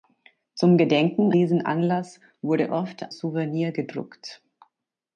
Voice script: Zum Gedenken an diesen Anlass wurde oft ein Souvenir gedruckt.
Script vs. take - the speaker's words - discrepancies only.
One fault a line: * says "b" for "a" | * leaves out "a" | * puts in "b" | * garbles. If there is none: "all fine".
* leaves out "an"
* leaves out "ein"